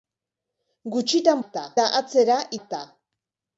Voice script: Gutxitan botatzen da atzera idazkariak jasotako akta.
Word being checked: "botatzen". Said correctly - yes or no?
no